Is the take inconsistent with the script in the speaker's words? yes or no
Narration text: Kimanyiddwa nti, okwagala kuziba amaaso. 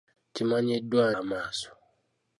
yes